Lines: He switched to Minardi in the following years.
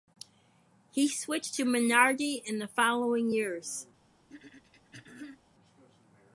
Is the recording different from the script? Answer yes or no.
no